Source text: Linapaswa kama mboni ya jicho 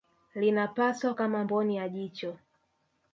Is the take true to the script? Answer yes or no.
yes